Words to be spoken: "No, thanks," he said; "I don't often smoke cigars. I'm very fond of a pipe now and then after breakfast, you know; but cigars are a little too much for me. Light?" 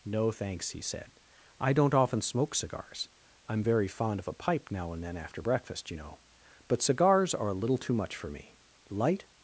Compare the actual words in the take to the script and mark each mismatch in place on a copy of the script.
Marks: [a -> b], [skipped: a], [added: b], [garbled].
"No, thanks," he said; "I don't often smoke cigars. I'm very fond of a pipe now and then after breakfast, you know; but cigars are a little too much for me. Light?"